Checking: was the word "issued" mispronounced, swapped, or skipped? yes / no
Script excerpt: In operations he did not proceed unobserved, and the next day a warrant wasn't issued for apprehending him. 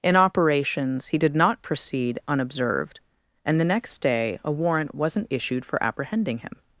no